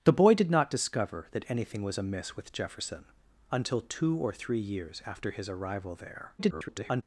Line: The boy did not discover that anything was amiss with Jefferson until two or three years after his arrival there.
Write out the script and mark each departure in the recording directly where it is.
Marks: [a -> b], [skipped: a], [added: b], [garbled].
The boy did not discover that anything was amiss with Jefferson until two or three years after his arrival there. [garbled]